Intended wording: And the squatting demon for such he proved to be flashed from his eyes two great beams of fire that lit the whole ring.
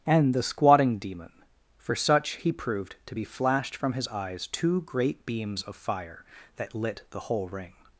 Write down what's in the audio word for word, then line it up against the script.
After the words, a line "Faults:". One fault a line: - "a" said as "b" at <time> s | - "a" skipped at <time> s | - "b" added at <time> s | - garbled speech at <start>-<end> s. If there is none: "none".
And the squatting demon for such he proved to be flashed from his eyes two great beams of fire that lit the whole ring.
Faults:
none